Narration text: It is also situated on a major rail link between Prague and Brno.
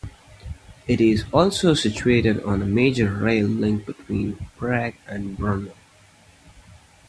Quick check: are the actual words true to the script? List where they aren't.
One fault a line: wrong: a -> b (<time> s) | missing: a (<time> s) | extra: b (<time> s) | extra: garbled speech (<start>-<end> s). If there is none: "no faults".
no faults